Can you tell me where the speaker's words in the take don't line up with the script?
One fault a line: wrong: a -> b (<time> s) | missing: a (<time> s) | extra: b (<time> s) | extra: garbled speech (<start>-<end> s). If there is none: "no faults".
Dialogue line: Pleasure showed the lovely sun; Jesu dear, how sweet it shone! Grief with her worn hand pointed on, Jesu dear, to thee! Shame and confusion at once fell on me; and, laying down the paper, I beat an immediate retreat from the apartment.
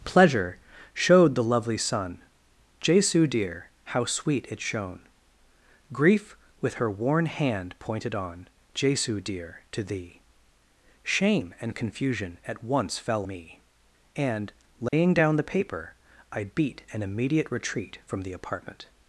missing: on (13.3 s)